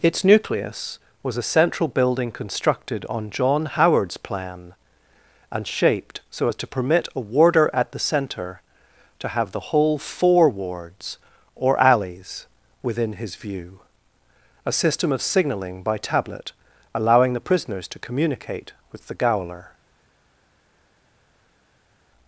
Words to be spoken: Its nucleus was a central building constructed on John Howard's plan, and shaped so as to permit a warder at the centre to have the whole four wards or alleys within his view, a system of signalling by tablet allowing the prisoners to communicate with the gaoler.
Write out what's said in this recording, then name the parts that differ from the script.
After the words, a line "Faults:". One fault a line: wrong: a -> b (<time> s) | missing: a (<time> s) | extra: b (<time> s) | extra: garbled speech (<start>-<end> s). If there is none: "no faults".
Its nucleus was a central building constructed on John Howard's plan, and shaped so as to permit a warder at the centre to have the whole four wards or alleys within his view, a system of signalling by tablet allowing the prisoners to communicate with the gaoler.
Faults:
no faults